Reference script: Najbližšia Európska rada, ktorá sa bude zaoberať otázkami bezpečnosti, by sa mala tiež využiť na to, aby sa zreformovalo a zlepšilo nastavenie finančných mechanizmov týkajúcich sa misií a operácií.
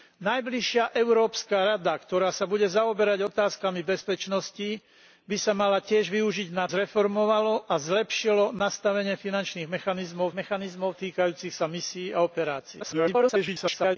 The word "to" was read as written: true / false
false